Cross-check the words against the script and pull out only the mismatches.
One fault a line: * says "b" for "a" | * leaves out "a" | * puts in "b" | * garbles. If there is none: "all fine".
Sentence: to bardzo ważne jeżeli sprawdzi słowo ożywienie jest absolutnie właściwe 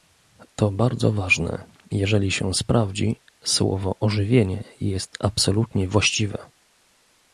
* puts in "się"